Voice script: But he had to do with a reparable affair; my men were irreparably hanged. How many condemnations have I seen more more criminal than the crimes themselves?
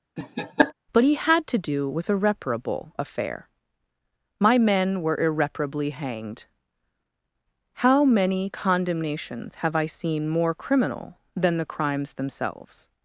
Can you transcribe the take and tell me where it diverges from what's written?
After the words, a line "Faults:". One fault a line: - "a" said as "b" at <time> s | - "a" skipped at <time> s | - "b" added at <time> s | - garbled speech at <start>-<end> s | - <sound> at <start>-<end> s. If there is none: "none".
But he had to do with a reparable affair; my men were irreparably hanged. How many condemnations have I seen more criminal than the crimes themselves?
Faults:
- laugh at 0.2-0.7 s
- "more" skipped at 10.5 s